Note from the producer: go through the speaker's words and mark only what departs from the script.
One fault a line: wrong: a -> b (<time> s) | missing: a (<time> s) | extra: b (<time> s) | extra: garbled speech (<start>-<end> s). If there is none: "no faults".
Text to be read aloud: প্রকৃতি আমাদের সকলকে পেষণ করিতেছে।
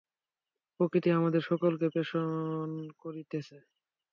no faults